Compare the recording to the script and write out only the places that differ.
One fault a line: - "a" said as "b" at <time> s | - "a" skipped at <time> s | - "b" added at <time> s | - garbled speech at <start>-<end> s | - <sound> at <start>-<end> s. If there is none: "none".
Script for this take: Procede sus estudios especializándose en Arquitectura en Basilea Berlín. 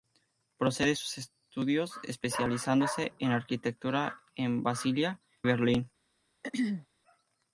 - throat clearing at 6.4-6.9 s